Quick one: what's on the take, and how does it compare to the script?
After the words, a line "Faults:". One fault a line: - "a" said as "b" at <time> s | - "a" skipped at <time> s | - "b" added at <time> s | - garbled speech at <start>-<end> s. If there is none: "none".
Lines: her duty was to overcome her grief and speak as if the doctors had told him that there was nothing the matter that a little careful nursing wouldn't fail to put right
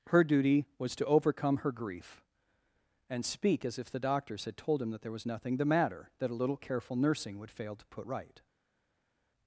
her duty was to overcome her grief and speak as if the doctors had told him that there was nothing the matter that a little careful nursing would fail to put right
Faults:
- "wouldn't" said as "would" at 7.4 s